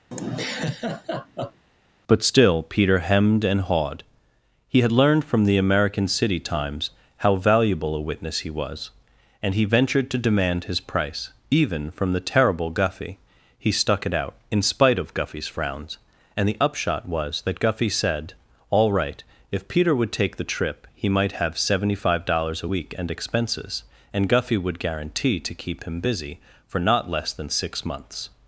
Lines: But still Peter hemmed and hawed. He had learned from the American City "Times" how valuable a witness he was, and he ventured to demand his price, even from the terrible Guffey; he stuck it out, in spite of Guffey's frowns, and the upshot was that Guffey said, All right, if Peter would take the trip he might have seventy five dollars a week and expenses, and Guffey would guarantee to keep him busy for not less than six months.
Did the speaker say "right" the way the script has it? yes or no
yes